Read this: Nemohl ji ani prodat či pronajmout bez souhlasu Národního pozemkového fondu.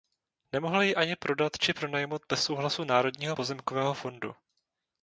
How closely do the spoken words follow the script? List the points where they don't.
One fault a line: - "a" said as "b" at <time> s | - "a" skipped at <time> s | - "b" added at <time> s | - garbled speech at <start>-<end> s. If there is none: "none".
none